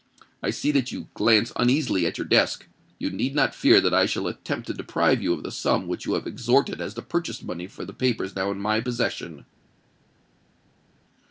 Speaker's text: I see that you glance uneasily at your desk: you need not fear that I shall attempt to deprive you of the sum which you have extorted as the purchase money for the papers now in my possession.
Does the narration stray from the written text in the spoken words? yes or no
no